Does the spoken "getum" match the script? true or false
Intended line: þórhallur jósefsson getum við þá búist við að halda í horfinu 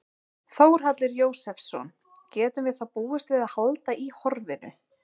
true